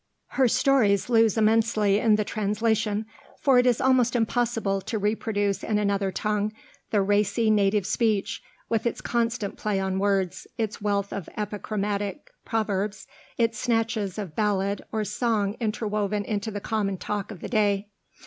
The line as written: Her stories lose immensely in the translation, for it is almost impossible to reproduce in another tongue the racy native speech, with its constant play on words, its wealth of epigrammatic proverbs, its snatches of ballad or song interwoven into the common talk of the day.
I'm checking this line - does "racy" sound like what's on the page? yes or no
yes